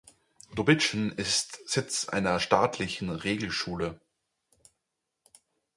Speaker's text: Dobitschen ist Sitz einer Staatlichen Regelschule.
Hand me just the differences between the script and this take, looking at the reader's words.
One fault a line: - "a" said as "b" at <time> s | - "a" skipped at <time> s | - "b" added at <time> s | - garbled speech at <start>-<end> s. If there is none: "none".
none